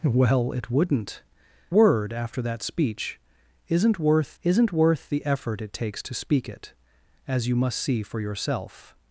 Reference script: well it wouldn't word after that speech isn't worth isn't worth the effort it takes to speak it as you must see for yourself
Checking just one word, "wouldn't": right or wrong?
right